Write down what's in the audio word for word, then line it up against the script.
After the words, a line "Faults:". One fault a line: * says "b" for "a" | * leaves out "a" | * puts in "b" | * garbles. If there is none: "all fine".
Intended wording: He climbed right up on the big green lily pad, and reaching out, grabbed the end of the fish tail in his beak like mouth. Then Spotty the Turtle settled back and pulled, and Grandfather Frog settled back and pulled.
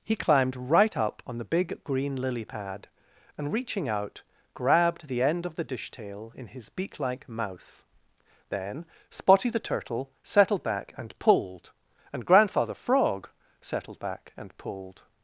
He climbed right up on the big green lily pad, and reaching out, grabbed the end of the dish tail in his beak like mouth. Then Spotty the Turtle settled back and pulled, and Grandfather Frog settled back and pulled.
Faults:
* says "dish" for "fish"